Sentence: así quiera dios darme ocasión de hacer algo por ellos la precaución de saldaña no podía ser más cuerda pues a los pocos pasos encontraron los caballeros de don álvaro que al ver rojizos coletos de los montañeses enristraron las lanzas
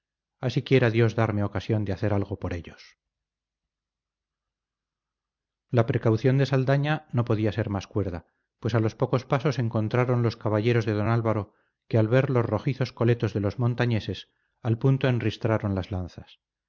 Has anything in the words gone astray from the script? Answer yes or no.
yes